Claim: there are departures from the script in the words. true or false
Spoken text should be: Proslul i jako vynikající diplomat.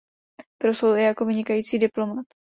false